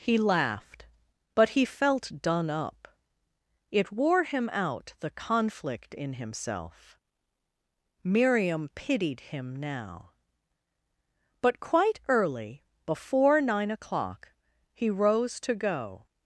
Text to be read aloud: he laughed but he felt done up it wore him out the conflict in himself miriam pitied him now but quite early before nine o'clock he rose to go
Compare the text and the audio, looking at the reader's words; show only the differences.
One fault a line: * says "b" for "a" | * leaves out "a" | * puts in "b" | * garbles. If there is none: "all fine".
all fine